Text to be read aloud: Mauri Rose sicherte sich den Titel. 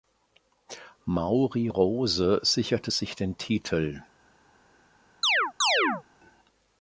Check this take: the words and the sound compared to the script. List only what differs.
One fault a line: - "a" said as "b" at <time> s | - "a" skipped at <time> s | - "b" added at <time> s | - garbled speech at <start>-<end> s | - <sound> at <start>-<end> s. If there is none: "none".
- chirp at 5.2-6.0 s